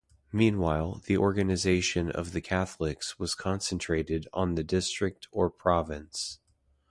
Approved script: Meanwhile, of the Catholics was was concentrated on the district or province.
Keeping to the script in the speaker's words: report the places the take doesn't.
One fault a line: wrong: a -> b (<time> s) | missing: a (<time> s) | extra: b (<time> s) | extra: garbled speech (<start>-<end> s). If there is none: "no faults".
extra: the organization (1.1 s)
missing: was (3.3 s)